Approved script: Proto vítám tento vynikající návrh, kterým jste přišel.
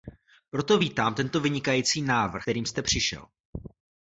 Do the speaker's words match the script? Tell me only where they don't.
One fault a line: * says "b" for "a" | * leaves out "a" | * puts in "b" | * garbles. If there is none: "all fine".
all fine